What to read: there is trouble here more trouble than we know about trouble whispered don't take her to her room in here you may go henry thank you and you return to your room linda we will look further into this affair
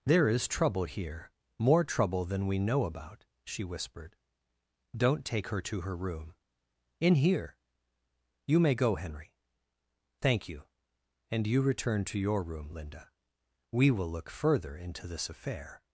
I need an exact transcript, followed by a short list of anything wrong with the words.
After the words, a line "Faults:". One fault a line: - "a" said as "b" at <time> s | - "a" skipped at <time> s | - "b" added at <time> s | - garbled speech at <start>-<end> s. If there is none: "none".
there is trouble here more trouble than we know about she whispered don't take her to her room in here you may go henry thank you and you return to your room linda we will look further into this affair
Faults:
- "trouble" said as "she" at 3.4 s